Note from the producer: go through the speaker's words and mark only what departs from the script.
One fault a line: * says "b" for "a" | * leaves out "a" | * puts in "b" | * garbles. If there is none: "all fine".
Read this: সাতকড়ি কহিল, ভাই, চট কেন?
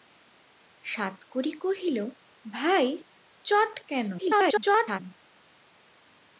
* garbles